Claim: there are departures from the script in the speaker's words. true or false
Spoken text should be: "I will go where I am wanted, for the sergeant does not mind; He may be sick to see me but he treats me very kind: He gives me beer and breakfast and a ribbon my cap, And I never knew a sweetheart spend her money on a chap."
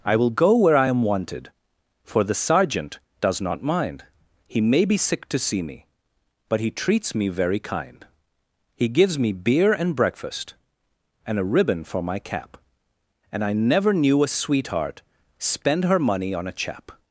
true